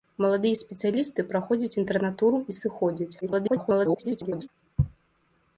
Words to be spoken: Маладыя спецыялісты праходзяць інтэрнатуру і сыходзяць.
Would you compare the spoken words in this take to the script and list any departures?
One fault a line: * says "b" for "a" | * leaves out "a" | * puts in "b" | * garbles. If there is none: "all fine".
* garbles